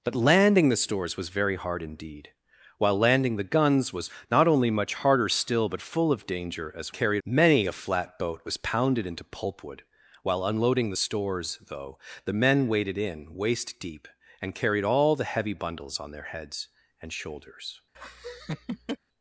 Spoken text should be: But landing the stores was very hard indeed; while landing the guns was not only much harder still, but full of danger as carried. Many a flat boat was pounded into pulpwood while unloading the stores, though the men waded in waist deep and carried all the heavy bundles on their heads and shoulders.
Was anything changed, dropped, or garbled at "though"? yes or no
no